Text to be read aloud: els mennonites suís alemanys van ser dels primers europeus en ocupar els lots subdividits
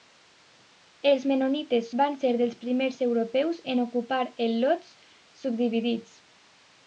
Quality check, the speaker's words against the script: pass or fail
fail